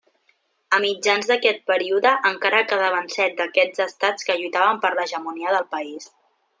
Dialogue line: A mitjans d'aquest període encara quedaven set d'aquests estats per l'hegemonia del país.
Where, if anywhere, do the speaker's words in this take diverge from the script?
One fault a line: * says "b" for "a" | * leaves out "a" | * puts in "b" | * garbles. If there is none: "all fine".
* puts in "que lluitaven"